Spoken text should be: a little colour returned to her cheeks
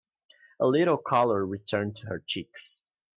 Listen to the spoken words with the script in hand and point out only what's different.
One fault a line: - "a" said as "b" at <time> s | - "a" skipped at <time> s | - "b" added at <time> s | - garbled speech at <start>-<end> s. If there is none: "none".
none